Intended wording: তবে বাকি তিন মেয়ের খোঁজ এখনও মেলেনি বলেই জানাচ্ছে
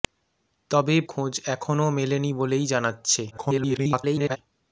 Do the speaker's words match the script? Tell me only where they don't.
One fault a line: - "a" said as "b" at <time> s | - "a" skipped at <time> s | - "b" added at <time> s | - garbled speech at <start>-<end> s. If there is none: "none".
- "বাকি তিন মেয়ের" skipped at 0.9 s
- garbled speech at 3.3-4.4 s